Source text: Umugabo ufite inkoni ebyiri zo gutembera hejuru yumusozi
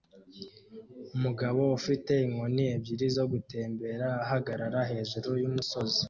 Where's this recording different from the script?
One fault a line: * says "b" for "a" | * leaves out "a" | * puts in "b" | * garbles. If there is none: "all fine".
* puts in "ahagarara"